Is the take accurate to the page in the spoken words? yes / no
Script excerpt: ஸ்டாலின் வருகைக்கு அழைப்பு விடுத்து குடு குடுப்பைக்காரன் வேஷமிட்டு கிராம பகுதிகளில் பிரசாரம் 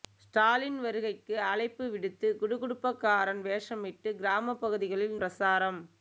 yes